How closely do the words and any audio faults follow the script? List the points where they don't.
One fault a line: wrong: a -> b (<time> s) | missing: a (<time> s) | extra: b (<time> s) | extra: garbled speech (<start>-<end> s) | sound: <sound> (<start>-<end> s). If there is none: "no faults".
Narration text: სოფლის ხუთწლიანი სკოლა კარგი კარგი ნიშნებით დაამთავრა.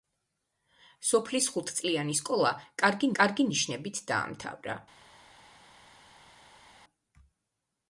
no faults